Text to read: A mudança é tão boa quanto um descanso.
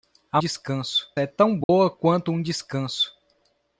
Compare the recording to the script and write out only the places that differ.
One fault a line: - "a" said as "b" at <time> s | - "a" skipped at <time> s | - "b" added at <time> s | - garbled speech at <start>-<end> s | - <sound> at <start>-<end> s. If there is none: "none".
- "mudança" said as "descanso" at 0.4 s
- dropout at 1.6-1.7 s